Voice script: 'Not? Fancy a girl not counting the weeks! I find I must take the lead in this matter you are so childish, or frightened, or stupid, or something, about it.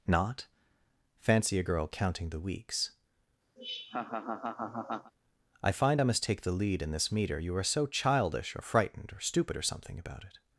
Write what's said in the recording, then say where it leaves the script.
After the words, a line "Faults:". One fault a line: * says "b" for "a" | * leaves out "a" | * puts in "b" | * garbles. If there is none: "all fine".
'Not? Fancy a girl counting the weeks! I find I must take the lead in this meter you are so childish, or frightened, or stupid, or something, about it.
Faults:
* leaves out "not"
* says "meter" for "matter"